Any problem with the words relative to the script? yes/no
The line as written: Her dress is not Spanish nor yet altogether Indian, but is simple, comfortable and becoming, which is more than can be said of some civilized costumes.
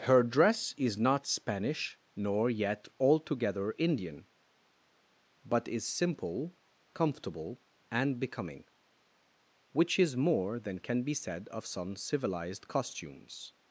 no